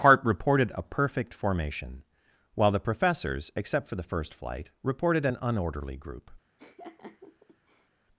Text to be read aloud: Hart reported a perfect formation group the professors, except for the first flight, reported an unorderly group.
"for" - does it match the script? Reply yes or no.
yes